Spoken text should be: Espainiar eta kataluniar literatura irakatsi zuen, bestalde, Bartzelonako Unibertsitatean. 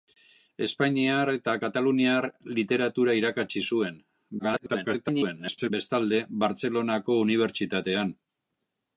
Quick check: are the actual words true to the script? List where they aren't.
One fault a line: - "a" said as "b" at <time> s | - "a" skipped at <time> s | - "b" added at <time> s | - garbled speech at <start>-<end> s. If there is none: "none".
- garbled speech at 4.4-5.7 s